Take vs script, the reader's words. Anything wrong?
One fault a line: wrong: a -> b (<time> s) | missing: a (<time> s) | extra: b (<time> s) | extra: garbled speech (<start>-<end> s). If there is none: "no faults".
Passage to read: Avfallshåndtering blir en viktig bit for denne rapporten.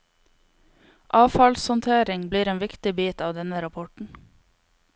wrong: for -> av (3.2 s)